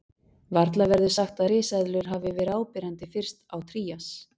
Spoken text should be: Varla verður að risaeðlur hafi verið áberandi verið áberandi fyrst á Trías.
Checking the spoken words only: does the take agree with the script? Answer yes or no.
no